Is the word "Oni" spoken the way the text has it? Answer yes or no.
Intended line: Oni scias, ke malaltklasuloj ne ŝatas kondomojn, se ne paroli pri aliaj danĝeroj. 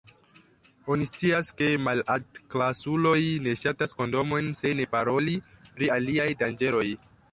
yes